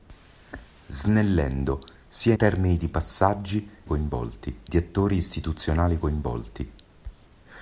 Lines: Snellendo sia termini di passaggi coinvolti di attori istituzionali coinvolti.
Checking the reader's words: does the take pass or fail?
pass